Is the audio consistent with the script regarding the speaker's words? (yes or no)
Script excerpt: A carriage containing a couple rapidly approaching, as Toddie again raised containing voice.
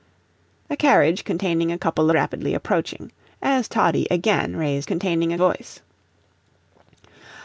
yes